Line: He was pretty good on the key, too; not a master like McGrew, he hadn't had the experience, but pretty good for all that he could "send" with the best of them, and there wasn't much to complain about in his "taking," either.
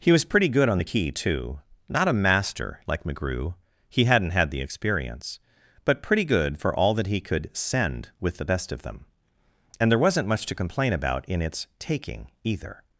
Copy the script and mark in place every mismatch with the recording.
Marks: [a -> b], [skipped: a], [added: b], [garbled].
He was pretty good on the key, too; not a master like McGrew, he hadn't had the experience, but pretty good for all that he could "send" with the best of them, and there wasn't much to complain about in [his -> its] "taking," either.